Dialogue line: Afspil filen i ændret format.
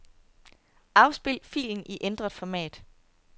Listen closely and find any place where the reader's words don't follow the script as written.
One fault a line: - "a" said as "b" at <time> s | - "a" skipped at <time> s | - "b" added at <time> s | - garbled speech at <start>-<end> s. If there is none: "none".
none